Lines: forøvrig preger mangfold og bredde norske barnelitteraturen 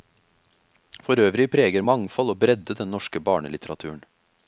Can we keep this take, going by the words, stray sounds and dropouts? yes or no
no